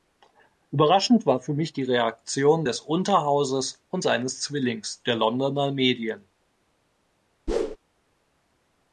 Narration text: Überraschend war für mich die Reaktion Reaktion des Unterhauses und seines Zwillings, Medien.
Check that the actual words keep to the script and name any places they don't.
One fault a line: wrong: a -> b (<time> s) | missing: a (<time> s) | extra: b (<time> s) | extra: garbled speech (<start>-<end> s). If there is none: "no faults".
missing: Reaktion (2.6 s)
extra: der Londoner (5.0 s)